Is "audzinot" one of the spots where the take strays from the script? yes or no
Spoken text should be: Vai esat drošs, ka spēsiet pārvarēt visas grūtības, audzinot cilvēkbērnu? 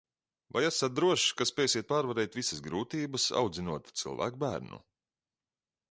no